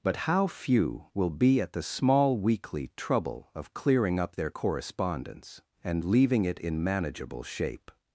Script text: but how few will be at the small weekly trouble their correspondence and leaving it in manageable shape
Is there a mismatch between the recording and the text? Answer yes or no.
yes